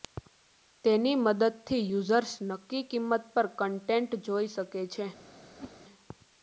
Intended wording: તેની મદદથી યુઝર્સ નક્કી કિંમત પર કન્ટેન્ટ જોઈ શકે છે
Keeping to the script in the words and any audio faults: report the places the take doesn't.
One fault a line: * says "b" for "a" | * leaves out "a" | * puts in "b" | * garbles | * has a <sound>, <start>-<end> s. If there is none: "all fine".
* has a whoosh, 5.5-5.8 s